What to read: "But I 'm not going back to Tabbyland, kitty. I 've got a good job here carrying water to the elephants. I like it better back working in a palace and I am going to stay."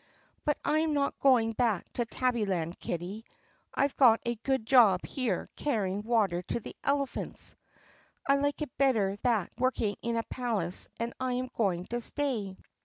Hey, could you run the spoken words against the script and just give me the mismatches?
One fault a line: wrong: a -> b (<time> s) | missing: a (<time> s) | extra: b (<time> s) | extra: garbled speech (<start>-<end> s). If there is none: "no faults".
no faults